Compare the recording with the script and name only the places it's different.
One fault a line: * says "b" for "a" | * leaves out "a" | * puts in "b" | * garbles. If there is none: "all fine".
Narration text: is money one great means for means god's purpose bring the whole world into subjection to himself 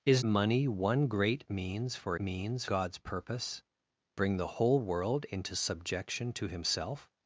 all fine